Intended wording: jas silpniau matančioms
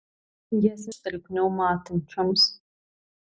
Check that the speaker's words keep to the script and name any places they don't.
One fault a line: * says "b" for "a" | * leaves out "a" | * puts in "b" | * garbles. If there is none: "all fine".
all fine